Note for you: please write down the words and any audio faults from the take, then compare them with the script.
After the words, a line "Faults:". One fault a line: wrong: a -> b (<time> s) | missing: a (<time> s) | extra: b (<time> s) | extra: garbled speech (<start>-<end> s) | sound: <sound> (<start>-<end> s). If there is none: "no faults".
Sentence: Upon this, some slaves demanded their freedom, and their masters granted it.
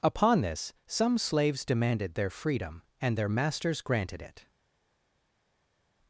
Upon this, some slaves demanded their freedom, and their masters granted it.
Faults:
no faults